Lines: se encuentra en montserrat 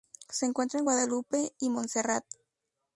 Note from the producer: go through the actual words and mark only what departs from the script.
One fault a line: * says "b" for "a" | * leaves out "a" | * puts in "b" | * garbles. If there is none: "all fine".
* puts in "guadalupe y"